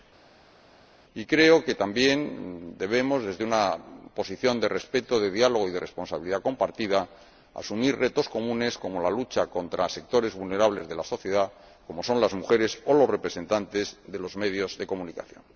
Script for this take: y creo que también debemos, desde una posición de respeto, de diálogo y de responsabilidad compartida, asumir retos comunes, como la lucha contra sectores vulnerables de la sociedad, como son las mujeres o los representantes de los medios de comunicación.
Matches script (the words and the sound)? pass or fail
pass